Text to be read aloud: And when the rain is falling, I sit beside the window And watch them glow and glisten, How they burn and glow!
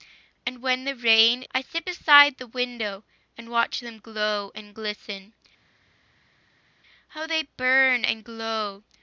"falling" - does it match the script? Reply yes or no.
no